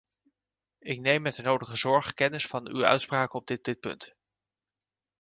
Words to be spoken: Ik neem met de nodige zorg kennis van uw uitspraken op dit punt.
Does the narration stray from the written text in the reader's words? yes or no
yes